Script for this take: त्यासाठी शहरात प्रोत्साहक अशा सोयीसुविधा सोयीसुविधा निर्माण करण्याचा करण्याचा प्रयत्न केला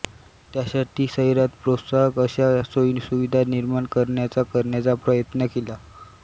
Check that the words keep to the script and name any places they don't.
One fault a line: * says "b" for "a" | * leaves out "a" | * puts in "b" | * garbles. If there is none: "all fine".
* leaves out "सोयीसुविधा"